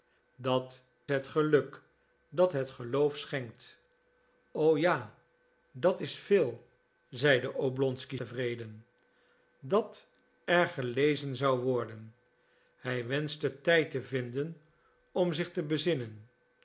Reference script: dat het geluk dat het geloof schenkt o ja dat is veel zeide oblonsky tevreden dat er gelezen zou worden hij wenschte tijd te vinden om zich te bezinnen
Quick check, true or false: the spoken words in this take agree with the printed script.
true